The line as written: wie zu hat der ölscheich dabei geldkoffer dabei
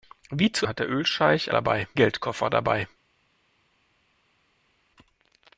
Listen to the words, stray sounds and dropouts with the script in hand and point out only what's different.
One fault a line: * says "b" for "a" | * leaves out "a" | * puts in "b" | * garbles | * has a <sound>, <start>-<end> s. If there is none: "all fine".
all fine